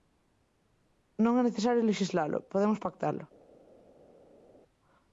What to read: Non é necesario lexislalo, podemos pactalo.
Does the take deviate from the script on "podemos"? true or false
false